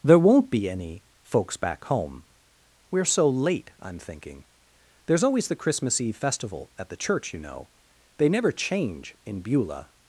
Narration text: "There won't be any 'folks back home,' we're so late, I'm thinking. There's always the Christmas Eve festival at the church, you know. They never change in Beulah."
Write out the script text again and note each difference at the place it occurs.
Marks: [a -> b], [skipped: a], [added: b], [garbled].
"There won't be any 'folks back home,' we're so late, I'm thinking. There's always the Christmas Eve festival at the church, you know. They never change in Beulah."